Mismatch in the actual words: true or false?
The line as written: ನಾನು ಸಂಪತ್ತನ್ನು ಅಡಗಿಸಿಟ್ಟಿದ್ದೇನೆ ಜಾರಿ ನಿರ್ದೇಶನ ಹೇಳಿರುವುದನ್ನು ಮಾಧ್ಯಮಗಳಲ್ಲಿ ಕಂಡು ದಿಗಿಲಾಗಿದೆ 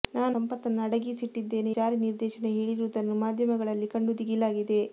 false